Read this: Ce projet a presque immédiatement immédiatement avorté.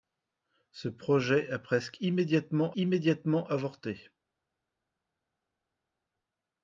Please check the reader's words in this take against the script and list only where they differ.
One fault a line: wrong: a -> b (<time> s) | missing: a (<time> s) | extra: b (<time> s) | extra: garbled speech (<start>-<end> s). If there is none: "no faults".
no faults